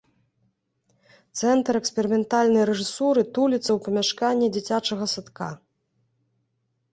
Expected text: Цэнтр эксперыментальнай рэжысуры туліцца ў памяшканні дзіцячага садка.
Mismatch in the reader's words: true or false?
false